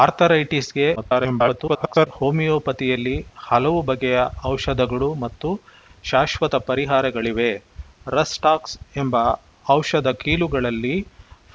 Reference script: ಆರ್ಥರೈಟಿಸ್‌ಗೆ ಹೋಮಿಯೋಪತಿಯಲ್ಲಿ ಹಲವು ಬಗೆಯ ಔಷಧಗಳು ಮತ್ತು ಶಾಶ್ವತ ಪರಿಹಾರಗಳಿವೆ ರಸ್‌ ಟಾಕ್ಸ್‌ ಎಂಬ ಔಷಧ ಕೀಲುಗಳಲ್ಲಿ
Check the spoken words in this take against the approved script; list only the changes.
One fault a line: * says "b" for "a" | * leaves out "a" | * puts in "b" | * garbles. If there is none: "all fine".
* garbles